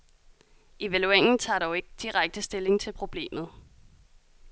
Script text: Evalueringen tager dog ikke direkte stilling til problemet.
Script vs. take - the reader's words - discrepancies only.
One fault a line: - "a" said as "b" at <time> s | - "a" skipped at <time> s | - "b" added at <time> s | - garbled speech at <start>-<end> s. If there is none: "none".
none